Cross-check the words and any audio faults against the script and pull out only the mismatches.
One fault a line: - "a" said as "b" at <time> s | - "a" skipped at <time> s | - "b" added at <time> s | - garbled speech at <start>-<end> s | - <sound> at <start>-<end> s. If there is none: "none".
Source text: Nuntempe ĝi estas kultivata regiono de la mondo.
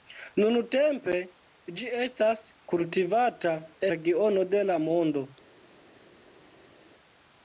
none